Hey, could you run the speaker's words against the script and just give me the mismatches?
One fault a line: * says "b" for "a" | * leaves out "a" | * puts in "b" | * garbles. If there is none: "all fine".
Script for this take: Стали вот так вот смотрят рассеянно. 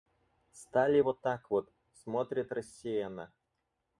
all fine